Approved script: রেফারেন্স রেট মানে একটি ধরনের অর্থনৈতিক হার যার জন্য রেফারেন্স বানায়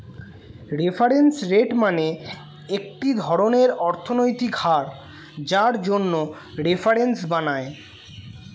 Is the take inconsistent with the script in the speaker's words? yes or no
no